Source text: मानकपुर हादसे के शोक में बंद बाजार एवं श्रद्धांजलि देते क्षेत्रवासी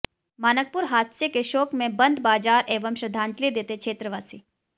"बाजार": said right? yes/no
yes